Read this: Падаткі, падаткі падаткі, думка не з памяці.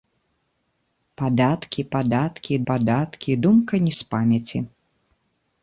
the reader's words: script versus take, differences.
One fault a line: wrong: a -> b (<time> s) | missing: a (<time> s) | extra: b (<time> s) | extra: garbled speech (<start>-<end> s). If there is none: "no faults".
no faults